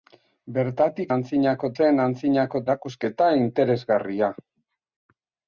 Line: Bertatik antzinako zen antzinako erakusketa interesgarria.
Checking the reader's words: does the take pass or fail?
pass